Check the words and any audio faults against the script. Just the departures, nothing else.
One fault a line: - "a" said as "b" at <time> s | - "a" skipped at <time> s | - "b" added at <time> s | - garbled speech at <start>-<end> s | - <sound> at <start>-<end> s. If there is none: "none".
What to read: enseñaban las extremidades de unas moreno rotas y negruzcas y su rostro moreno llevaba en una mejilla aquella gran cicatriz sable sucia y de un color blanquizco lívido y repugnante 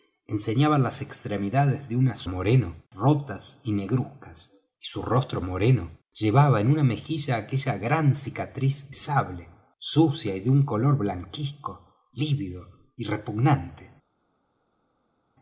none